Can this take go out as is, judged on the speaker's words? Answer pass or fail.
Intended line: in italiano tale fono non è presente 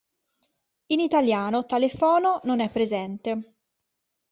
pass